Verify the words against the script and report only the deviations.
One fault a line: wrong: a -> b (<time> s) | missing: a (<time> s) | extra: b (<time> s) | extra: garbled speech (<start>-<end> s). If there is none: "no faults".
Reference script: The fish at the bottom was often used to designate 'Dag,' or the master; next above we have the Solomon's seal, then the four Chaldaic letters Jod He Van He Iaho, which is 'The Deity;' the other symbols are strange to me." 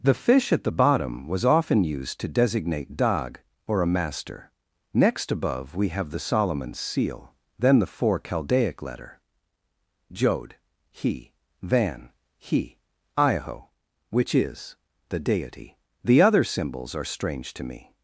wrong: the -> a (3.8 s)
wrong: letters -> letter (8.8 s)